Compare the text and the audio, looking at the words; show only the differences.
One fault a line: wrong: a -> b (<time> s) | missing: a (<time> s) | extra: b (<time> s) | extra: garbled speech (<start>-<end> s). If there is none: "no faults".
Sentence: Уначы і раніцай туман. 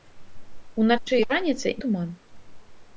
no faults